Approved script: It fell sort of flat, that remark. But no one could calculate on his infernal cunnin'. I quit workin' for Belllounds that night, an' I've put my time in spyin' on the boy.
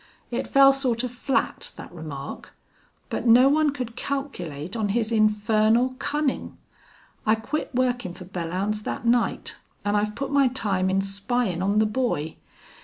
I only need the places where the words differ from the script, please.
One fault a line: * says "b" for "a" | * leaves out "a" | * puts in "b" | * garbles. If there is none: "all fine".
all fine